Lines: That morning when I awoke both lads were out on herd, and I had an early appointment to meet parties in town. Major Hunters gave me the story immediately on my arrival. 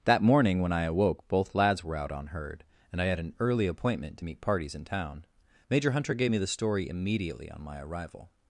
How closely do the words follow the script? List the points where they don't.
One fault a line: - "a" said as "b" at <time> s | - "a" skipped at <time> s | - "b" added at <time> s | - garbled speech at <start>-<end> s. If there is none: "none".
- "Hunters" said as "Hunter" at 5.9 s